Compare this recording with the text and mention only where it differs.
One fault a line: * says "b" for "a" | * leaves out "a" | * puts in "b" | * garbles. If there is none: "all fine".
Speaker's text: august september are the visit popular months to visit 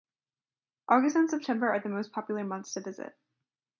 * puts in "and"
* says "most" for "visit"